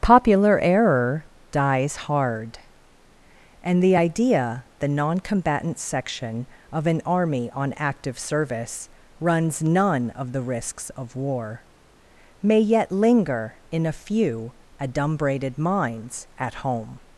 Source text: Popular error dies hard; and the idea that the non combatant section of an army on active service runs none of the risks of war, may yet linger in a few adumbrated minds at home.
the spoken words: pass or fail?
fail